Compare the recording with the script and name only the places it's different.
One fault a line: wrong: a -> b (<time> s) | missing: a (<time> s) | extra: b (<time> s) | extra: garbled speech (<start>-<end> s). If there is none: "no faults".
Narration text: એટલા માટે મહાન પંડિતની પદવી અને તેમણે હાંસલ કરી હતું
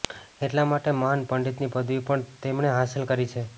wrong: અને -> પણ (2.1 s)
wrong: હતું -> છે (3.3 s)